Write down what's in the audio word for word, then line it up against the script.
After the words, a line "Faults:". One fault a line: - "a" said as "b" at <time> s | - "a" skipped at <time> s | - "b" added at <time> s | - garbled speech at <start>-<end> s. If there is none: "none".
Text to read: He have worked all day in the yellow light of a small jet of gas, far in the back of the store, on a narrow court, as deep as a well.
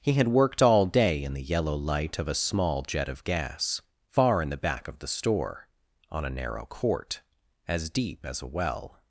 He had worked all day in the yellow light of a small jet of gas, far in the back of the store, on a narrow court, as deep as a well.
Faults:
- "have" said as "had" at 0.1 s